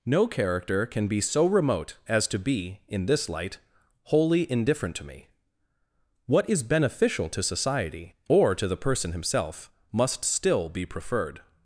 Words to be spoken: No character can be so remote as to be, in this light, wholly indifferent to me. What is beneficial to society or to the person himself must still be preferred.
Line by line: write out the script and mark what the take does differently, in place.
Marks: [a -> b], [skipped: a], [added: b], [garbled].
No character can be so remote as to be, in this light, wholly indifferent to me. What is beneficial to society or to the person himself must still be preferred.